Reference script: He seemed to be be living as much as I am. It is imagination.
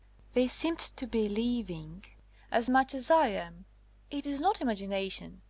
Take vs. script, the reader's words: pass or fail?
fail